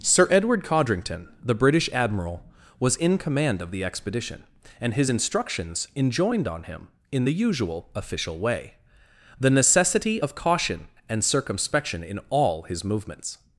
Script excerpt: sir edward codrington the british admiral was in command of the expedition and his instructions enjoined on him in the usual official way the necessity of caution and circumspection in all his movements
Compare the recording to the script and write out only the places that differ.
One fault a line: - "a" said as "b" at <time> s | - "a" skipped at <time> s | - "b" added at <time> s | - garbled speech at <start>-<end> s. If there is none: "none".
none